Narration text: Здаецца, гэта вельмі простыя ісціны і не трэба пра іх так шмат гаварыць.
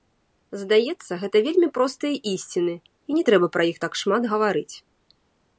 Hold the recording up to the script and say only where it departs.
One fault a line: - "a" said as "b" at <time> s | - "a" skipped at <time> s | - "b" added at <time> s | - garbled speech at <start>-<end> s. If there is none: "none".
none